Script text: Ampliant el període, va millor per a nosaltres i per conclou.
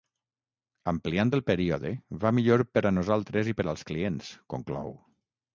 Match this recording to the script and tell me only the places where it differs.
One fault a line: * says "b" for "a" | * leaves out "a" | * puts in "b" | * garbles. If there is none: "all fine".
* puts in "als clients"